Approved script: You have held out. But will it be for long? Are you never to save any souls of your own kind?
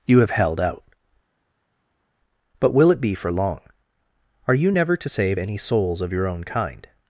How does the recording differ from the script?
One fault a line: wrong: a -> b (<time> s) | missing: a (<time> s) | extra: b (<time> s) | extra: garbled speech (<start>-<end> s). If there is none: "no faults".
no faults